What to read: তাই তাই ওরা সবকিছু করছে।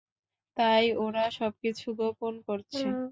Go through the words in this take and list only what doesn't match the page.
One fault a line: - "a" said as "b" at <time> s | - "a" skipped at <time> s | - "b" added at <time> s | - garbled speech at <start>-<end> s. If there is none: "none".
- "তাই" skipped at 0.8 s
- "গোপন" added at 2.0 s